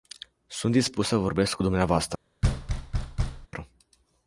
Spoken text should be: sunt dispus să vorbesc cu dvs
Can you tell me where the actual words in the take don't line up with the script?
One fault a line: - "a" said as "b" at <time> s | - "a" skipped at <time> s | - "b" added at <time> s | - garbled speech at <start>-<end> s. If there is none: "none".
none